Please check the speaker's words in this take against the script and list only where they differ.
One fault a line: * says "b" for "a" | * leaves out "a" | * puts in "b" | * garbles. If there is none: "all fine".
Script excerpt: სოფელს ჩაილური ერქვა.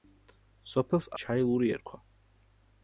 all fine